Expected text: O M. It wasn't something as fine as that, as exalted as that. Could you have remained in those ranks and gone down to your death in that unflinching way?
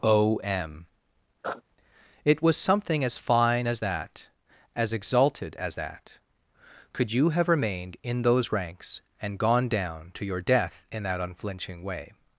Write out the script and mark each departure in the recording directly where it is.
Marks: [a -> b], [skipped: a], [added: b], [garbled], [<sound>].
O M. [sniff] It [wasn't -> was] something as fine as that, as exalted as that. Could you have remained in those ranks and gone down to your death in that unflinching way?